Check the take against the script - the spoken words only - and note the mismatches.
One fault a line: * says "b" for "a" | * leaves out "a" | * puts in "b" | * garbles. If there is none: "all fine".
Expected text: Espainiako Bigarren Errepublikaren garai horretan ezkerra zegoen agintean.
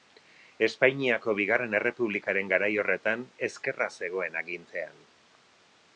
all fine